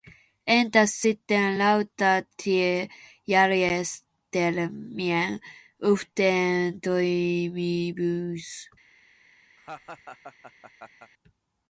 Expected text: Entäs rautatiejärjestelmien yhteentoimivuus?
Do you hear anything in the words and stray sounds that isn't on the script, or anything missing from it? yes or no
yes